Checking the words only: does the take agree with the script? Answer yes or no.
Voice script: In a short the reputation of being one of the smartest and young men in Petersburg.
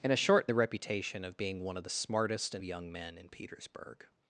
yes